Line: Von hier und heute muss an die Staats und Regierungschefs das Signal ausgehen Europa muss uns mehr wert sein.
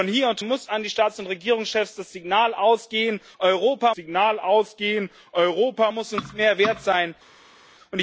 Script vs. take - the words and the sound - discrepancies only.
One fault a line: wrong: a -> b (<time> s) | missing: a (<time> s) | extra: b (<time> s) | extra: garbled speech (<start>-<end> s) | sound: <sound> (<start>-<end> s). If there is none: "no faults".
missing: heute (0.4 s)
extra: Signal ausgehen Europa (3.9 s)